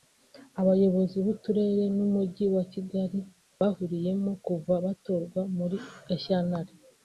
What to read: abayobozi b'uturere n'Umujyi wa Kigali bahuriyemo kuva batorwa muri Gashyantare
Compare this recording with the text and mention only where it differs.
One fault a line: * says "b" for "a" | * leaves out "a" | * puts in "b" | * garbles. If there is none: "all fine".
all fine